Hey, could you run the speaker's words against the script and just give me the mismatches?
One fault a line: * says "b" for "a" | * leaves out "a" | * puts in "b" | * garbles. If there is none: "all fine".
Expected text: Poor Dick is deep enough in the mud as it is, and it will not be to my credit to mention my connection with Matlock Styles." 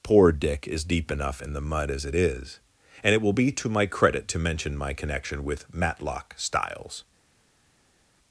* leaves out "not"